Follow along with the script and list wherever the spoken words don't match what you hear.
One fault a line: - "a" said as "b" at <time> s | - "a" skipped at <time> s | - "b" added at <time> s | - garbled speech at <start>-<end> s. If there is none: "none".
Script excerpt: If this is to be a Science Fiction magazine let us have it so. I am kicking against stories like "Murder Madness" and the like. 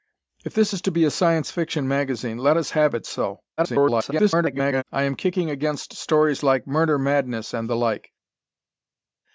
- garbled speech at 3.6-4.8 s